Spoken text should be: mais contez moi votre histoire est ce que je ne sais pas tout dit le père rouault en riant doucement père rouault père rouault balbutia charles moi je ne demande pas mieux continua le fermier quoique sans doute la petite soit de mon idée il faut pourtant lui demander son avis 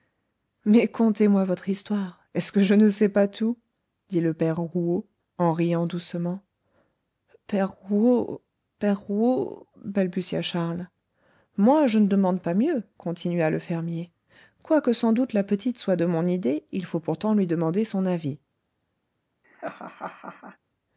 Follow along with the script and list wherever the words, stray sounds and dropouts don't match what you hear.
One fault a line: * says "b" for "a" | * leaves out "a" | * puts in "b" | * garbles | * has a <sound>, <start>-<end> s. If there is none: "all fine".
* has a laugh, 19.4-20.6 s